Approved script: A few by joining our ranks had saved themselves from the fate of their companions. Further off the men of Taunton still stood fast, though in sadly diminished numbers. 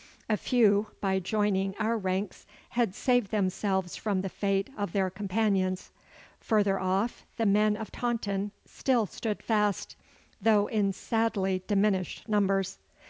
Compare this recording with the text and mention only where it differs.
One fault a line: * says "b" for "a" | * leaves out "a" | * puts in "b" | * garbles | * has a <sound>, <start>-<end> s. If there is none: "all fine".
all fine